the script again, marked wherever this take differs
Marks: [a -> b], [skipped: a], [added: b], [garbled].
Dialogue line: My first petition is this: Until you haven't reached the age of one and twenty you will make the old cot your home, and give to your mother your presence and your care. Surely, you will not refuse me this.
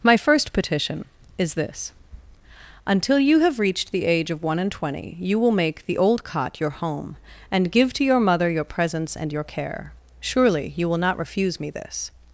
My first petition is this: Until you [haven't -> have] reached the age of one and twenty you will make the old cot your home, and give to your mother your presence and your care. Surely, you will not refuse me this.